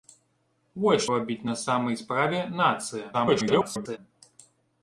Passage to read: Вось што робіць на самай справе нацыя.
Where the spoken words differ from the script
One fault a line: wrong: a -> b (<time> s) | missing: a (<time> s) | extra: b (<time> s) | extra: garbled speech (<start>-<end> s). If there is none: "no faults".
missing: што (1.0 s)
extra: garbled speech (3.1-4.0 s)